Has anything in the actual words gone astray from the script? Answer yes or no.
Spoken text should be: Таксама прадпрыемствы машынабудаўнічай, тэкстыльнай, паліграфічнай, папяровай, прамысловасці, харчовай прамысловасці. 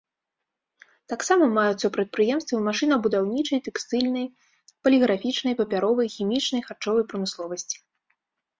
yes